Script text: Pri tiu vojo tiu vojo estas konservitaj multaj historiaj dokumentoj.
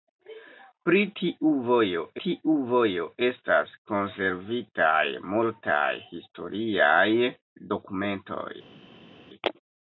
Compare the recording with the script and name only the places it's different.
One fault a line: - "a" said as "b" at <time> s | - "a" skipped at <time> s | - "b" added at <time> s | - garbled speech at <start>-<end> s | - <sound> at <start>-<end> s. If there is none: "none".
none